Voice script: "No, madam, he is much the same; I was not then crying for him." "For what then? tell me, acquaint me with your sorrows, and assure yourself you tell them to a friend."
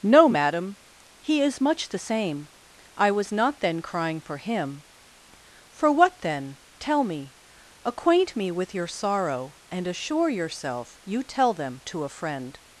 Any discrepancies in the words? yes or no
yes